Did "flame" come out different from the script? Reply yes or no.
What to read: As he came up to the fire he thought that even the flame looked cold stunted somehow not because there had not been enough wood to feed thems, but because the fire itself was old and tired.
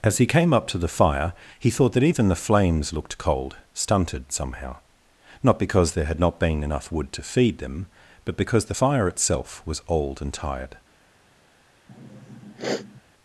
yes